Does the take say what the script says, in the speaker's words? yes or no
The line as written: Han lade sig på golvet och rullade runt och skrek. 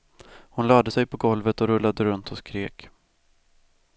no